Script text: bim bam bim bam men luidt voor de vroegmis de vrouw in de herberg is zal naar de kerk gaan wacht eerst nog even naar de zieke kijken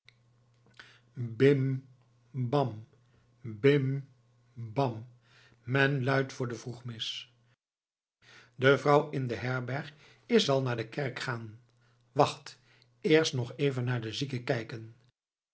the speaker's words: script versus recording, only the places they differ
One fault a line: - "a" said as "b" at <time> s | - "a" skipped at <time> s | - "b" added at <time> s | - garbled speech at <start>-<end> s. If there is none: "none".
none